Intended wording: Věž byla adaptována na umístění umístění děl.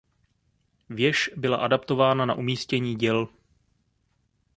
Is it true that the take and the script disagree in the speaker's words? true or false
true